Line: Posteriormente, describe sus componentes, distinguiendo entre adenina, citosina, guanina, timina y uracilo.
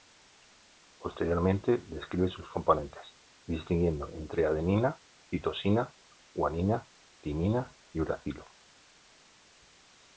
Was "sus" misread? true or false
false